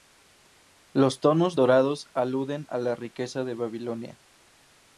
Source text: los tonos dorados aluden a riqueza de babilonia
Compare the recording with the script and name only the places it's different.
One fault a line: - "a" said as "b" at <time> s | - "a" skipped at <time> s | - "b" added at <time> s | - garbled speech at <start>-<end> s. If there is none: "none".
- "la" added at 2.8 s